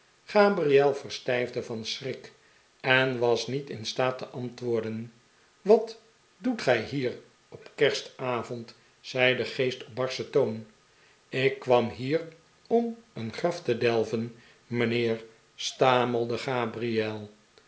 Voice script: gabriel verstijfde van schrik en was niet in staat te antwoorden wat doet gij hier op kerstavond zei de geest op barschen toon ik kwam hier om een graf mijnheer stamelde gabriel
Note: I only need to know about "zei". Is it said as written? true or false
true